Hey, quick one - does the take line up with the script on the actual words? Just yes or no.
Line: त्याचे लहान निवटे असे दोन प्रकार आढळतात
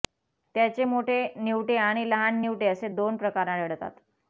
no